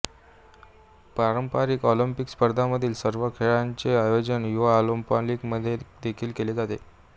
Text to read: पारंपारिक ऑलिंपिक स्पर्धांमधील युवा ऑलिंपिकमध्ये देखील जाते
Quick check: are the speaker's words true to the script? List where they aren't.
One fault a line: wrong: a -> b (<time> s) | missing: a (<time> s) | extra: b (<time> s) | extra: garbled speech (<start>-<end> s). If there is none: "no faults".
extra: सर्व खेळांचे आयोजन (3.0 s)
extra: केले (6.3 s)